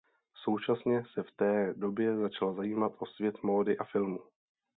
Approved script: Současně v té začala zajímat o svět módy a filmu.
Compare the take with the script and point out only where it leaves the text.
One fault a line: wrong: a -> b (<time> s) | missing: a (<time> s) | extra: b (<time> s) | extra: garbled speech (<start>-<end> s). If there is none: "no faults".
extra: se (1.1 s)
extra: době (1.7 s)